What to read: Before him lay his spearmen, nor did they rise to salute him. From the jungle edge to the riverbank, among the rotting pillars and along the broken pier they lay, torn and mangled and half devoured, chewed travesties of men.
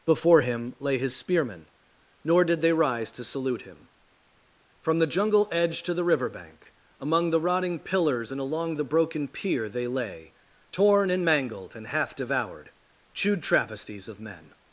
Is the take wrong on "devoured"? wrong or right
right